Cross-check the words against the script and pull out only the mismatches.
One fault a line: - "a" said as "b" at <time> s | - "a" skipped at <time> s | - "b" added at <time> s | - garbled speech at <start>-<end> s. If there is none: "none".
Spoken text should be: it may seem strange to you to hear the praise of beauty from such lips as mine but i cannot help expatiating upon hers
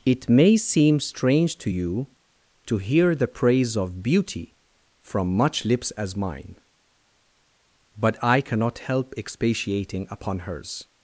- "such" said as "much" at 5.3 s